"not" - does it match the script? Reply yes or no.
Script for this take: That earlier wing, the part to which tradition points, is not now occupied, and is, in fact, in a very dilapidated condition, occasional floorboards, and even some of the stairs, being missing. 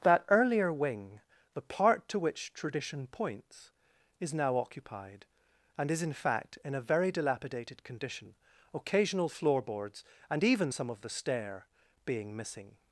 no